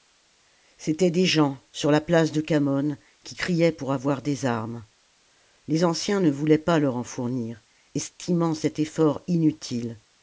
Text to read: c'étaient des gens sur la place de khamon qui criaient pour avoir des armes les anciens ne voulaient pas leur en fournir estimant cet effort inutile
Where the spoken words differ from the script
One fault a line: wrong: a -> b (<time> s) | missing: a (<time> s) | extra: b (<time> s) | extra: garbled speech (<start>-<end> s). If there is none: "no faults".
no faults